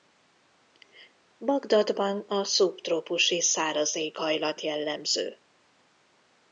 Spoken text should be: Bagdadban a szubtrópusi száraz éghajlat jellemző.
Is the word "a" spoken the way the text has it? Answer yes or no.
yes